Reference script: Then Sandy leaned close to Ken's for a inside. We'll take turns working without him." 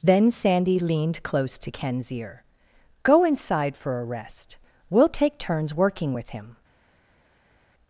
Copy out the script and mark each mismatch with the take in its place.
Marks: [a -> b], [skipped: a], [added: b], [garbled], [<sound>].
Then Sandy leaned close to Ken's [added: ear Go inside] for a [inside. -> rest] We'll take turns working [without -> with] him."